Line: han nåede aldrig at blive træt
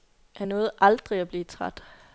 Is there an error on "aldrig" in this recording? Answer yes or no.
no